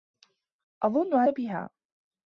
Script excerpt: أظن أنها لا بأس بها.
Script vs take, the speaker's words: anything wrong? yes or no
yes